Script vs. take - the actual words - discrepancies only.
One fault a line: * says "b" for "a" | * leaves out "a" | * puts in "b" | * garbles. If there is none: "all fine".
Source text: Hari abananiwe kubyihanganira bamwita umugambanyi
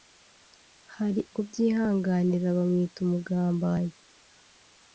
* leaves out "abananiwe"